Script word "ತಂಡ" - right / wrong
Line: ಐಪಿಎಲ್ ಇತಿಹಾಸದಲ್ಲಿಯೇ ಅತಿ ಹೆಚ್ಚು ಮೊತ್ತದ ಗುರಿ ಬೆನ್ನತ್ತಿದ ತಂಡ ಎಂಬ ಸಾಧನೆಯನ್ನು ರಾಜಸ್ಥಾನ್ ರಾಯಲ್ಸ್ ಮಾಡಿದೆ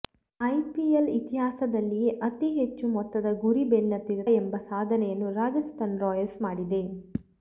wrong